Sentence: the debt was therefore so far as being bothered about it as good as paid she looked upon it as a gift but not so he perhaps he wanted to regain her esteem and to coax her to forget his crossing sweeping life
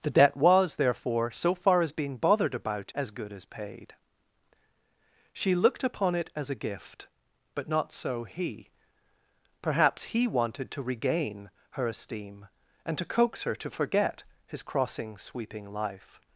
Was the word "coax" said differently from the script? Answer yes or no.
no